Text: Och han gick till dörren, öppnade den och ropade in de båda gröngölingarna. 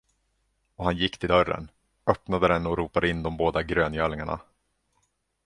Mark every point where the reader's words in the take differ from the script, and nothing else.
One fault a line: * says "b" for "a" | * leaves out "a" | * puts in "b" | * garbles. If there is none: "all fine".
all fine